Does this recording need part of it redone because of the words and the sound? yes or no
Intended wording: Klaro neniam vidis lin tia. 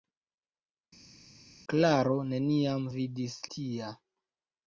yes